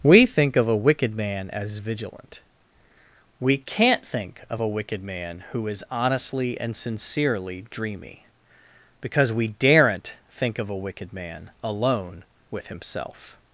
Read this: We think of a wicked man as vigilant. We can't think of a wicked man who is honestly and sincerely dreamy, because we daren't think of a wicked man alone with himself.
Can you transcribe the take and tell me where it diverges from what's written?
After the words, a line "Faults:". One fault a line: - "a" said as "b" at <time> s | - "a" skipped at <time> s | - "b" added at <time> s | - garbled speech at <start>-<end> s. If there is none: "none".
We think of a wicked man as vigilant. We can't think of a wicked man who is honestly and sincerely dreamy, because we daren't think of a wicked man alone with himself.
Faults:
none